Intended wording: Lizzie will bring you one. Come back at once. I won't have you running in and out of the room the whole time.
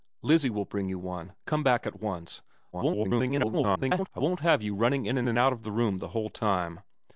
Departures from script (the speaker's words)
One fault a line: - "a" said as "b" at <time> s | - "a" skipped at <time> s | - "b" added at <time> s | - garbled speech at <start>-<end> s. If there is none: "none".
- garbled speech at 2.7-4.1 s
- "and" added at 5.3 s